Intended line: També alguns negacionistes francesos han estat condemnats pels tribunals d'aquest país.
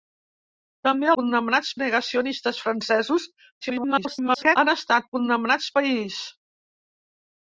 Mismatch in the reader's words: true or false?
true